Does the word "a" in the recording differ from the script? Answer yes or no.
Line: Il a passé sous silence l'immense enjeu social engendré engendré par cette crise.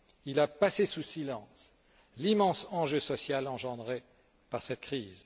no